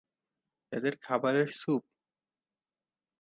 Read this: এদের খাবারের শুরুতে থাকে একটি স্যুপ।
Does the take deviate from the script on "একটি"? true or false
true